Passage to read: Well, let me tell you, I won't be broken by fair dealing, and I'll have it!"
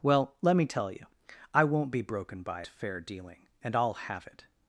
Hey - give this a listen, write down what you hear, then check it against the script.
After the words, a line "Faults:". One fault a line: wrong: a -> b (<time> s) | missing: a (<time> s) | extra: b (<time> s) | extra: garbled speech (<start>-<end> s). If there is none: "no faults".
Well, let me tell you, I won't be broken by fair dealing, and I'll have it!"
Faults:
no faults